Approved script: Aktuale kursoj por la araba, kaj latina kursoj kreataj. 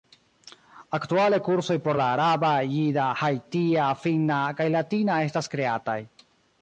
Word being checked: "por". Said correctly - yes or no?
yes